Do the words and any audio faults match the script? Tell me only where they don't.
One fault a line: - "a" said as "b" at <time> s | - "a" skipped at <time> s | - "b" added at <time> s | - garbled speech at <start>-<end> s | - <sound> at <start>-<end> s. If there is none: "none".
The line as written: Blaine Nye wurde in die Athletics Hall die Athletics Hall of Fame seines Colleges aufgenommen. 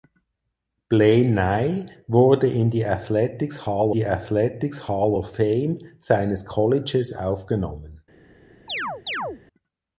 - chirp at 8.7-9.4 s